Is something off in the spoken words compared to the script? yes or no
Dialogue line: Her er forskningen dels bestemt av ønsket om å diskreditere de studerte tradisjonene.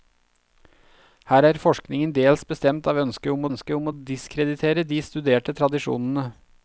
yes